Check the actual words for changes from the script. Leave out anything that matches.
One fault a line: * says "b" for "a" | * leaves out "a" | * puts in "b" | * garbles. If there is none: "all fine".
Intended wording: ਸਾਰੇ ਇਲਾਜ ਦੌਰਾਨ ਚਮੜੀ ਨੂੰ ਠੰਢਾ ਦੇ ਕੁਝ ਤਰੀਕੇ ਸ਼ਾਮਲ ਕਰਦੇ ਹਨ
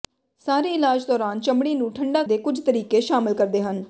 all fine